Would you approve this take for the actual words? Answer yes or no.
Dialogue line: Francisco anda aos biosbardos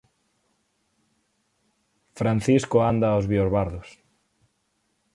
yes